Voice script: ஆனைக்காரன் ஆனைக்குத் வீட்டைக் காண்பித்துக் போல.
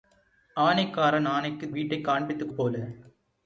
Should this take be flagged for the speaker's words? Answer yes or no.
no